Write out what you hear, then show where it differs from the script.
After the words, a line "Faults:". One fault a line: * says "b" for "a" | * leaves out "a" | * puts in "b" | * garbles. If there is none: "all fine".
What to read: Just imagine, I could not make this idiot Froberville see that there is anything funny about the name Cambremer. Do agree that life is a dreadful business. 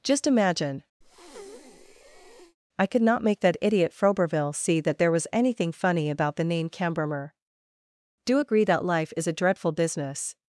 Just imagine, I could not make that idiot Froberville see that there was anything funny about the name Cambremer. Do agree that life is a dreadful business.
Faults:
* says "that" for "this"
* says "was" for "is"